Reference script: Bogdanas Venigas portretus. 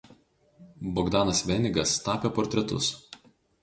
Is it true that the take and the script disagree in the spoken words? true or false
true